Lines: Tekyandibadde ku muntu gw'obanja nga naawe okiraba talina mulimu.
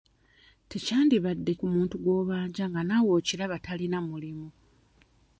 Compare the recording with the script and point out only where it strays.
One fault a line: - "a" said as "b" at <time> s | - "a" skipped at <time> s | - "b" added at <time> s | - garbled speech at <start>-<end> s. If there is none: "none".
none